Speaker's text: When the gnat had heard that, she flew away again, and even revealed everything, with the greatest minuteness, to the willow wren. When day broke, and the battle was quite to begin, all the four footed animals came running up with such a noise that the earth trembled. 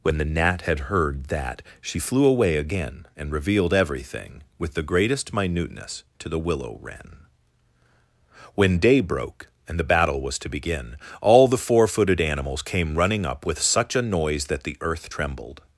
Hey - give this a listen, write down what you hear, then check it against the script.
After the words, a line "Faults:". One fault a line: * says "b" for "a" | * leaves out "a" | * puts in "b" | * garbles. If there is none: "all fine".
When the gnat had heard that, she flew away again, and revealed everything, with the greatest minuteness, to the willow wren. When day broke, and the battle was to begin, all the four footed animals came running up with such a noise that the earth trembled.
Faults:
* leaves out "even"
* leaves out "quite"